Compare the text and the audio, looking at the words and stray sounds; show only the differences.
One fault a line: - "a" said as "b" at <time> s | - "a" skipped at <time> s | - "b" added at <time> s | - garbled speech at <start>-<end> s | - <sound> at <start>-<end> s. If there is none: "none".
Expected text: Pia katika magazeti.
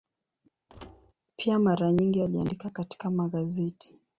- thud at 0.7-1.1 s
- "mara nyingi aliandika" added at 1.6 s